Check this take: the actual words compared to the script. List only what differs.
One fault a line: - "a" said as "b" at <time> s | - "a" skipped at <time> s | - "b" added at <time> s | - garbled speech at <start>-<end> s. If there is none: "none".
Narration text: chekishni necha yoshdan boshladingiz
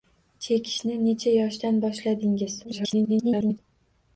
- garbled speech at 2.6-3.6 s